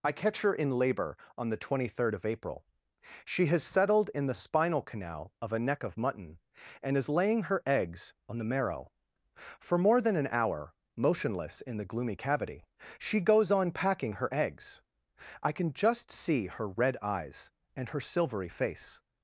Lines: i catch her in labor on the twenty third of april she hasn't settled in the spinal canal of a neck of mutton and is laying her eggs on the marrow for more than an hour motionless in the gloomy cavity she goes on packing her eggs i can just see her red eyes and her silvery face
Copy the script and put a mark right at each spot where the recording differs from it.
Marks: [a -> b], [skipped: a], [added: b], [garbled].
i catch her in labor on the twenty third of april she [hasn't -> has] settled in the spinal canal of a neck of mutton and is laying her eggs on the marrow for more than an hour motionless in the gloomy cavity she goes on packing her eggs i can just see her red eyes and her silvery face